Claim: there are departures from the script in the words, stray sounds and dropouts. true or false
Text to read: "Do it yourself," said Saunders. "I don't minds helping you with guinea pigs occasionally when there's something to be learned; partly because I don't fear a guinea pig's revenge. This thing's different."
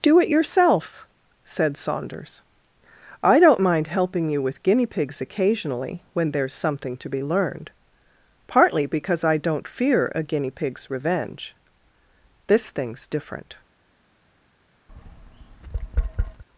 true